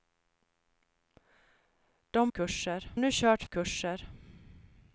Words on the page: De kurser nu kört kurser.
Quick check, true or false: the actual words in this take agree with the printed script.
true